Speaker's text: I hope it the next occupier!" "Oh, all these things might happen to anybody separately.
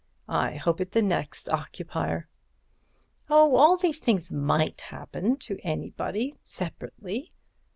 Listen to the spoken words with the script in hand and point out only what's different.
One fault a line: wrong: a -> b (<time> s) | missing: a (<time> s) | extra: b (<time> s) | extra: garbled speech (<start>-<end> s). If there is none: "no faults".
no faults